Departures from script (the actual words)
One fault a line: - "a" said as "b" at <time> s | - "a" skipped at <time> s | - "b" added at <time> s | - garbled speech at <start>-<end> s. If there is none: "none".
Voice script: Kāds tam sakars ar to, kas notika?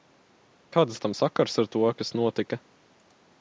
none